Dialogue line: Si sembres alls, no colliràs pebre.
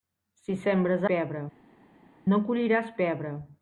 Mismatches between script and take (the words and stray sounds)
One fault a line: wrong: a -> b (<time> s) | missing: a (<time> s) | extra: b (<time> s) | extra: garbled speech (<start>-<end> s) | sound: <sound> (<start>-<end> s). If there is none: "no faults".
wrong: alls -> pebre (1.1 s)